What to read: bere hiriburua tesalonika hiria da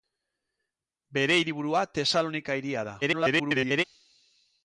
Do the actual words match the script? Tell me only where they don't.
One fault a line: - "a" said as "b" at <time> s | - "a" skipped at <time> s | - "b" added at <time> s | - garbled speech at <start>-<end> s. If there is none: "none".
- garbled speech at 3.0-3.8 s